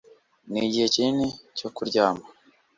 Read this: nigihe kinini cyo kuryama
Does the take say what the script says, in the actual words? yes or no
yes